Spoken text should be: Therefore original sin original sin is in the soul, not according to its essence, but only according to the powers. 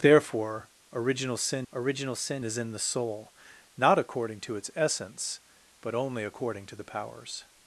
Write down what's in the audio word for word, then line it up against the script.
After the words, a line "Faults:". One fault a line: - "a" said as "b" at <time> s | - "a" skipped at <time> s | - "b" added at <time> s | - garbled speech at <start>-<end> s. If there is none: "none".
Therefore original sin original sin is in the soul, not according to its essence, but only according to the powers.
Faults:
none